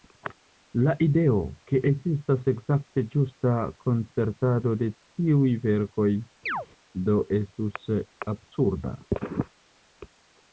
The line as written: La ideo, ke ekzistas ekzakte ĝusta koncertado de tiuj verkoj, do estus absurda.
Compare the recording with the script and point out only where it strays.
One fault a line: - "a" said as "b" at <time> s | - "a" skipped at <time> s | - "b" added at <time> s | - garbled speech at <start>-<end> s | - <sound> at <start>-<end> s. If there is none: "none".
- chirp at 6.5-6.7 s